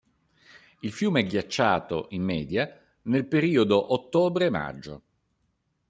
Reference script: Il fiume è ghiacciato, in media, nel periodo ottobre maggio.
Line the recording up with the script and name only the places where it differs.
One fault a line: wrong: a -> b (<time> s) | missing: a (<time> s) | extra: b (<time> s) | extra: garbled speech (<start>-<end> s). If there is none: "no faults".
no faults